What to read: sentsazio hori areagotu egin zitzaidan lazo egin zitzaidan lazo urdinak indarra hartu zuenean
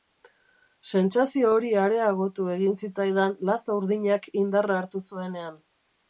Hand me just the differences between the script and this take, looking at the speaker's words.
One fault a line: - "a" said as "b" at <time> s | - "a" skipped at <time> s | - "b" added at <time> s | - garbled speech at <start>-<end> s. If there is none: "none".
- "egin zitzaidan lazo" skipped at 3.8 s